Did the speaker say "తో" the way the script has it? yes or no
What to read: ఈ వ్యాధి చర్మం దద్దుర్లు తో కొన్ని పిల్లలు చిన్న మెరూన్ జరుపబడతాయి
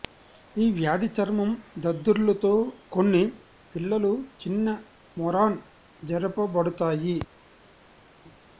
yes